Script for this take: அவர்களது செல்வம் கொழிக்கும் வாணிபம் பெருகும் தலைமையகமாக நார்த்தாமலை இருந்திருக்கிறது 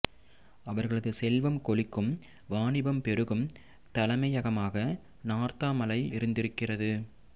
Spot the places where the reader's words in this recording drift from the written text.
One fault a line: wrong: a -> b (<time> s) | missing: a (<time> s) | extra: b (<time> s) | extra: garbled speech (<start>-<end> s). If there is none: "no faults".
no faults